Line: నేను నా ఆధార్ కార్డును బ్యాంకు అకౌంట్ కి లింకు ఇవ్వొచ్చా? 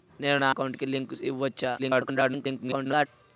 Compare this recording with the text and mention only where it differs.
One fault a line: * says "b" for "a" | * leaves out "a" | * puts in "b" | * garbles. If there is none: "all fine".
* leaves out "ఆధార్ కార్డును బ్యాంకు"
* garbles